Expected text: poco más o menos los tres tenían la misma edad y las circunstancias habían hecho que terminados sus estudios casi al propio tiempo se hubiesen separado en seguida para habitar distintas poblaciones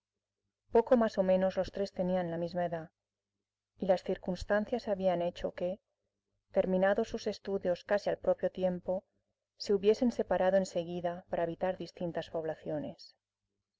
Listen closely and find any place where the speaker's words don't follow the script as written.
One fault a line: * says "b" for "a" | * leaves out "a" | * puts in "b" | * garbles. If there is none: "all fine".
all fine